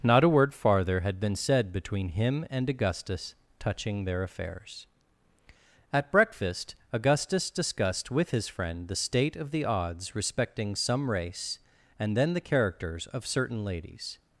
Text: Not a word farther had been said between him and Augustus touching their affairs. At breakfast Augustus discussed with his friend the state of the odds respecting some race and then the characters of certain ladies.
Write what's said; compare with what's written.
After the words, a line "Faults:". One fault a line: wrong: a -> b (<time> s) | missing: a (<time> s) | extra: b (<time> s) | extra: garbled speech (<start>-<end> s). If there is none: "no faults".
Not a word farther had been said between him and Augustus touching their affairs. At breakfast Augustus discussed with his friend the state of the odds respecting some race and then the characters of certain ladies.
Faults:
no faults